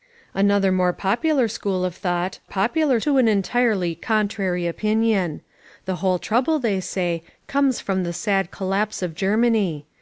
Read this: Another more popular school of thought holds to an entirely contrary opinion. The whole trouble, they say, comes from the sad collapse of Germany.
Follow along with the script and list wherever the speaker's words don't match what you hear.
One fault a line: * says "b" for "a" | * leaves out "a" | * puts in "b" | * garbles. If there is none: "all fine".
* says "popular" for "holds"